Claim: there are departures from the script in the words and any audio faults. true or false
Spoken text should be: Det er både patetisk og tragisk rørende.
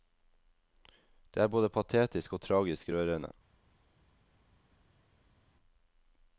false